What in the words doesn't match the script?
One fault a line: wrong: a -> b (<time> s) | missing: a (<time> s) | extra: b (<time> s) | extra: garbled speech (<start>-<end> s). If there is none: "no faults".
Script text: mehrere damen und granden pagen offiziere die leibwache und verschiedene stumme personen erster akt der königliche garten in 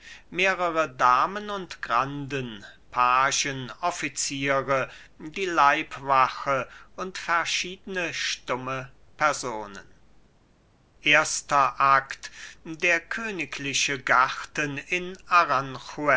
no faults